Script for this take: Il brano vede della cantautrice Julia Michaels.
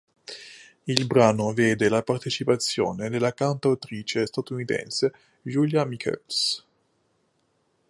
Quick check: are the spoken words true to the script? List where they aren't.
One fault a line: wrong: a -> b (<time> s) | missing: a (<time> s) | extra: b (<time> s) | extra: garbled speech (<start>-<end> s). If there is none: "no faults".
extra: la partecipazione (1.9 s)
extra: statunitense (4.2 s)